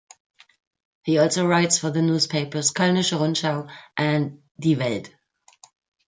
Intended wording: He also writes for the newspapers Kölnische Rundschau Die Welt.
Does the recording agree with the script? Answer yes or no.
no